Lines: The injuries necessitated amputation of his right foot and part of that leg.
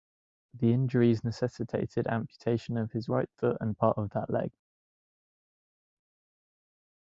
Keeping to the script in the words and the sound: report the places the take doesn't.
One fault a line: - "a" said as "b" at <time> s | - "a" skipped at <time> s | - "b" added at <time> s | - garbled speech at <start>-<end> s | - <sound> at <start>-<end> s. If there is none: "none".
none